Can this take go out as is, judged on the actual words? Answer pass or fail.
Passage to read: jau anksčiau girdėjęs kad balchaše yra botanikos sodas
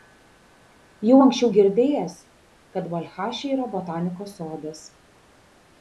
pass